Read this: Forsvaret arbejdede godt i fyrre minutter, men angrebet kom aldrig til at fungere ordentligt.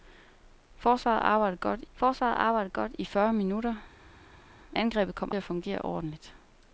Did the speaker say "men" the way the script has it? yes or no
no